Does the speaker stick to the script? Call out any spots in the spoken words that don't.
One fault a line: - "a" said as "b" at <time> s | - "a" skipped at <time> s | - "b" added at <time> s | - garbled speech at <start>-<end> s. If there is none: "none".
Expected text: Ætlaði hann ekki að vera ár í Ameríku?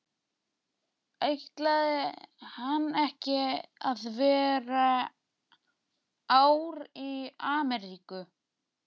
none